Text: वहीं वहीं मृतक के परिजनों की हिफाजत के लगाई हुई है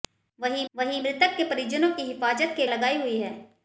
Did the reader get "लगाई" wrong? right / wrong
right